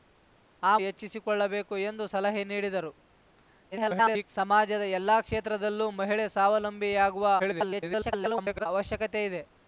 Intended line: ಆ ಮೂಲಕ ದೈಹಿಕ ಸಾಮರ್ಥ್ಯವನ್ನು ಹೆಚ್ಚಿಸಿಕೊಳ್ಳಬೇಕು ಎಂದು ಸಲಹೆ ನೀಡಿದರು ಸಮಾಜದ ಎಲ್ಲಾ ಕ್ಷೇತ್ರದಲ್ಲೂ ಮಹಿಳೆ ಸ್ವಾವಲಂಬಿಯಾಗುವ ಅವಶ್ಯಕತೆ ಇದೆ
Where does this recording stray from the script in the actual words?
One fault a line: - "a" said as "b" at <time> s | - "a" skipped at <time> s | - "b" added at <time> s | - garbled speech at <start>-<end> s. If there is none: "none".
- "ಮೂಲಕ ದೈಹಿಕ ಸಾಮರ್ಥ್ಯವನ್ನು" skipped at 0.8 s
- garbled speech at 3.7-4.3 s
- garbled speech at 7.4-8.7 s